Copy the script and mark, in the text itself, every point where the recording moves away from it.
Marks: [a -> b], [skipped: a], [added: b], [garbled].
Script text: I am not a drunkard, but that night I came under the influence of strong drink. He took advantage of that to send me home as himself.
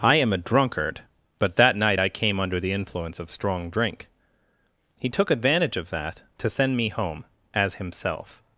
I am [skipped: not] a drunkard, but that night I came under the influence of strong drink. He took advantage of that to send me home as himself.